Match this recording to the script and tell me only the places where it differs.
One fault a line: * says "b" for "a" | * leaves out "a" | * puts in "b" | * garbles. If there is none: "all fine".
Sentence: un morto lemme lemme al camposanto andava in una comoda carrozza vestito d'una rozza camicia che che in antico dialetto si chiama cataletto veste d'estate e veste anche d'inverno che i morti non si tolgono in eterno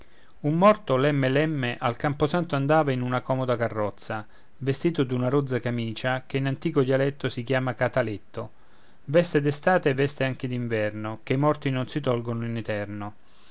* leaves out "che"